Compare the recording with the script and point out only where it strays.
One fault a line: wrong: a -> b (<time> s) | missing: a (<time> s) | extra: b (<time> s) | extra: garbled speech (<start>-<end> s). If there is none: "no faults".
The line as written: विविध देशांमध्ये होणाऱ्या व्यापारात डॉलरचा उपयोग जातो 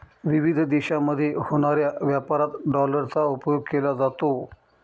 extra: केला (3.7 s)